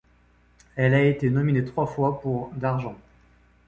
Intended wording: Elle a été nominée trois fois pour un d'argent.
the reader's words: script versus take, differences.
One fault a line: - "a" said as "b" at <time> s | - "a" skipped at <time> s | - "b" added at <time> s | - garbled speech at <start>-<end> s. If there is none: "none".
- "un" skipped at 2.5 s